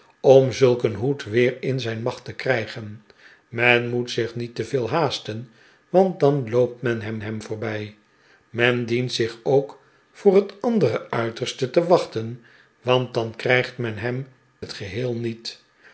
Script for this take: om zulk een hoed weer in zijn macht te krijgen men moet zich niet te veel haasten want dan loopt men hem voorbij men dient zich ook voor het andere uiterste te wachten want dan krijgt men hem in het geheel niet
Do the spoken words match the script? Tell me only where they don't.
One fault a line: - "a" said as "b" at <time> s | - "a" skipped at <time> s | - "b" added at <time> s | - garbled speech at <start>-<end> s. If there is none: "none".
- "hem" added at 7.2 s
- "in" skipped at 14.3 s